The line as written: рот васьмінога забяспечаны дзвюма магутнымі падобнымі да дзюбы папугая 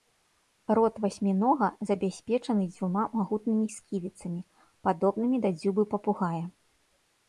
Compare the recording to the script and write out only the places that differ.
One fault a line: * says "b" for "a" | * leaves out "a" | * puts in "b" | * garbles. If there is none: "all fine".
* puts in "сківіцамі"